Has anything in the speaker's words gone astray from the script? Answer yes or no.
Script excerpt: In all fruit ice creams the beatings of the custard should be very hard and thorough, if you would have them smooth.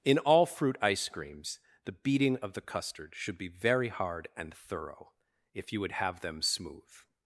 yes